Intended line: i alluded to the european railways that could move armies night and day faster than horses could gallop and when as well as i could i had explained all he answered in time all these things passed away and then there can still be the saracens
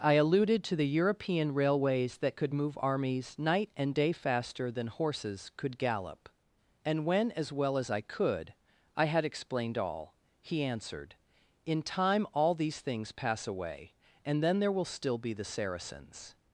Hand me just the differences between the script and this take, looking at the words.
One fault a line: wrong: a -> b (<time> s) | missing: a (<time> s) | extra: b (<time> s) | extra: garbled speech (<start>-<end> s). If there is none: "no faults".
wrong: passed -> pass (13.1 s)
wrong: can -> will (14.7 s)